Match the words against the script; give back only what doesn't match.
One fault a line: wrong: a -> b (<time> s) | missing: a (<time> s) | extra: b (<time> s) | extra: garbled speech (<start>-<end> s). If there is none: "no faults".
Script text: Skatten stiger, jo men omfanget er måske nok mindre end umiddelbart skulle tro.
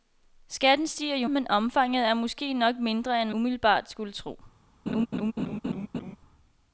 no faults